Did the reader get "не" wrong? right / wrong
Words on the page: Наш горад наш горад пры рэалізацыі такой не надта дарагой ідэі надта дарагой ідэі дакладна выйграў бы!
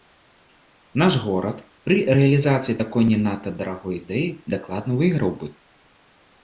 right